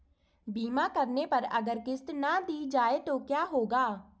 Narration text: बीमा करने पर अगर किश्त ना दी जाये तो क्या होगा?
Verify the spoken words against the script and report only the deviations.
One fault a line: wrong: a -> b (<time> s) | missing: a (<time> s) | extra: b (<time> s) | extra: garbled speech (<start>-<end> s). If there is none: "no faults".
no faults